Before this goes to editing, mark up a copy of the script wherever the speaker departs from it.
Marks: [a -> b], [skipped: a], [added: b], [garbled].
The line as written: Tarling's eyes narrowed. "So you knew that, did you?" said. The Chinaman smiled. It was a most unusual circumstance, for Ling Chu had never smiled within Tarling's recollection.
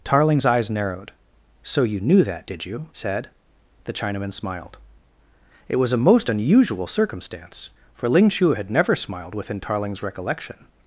Tarling's eyes narrowed. "So you knew that, did you?" said. The Chinaman smiled. It was a most unusual circumstance, for Ling Chu had never smiled within Tarling's recollection.